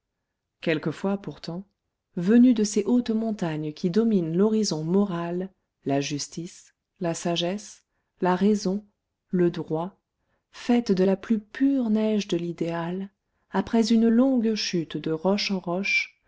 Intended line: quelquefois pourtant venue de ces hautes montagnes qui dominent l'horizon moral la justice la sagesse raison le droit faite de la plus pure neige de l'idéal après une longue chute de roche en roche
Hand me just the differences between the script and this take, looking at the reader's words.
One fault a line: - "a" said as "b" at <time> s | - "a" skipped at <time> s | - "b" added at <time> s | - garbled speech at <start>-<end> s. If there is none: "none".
- "la" added at 8.2 s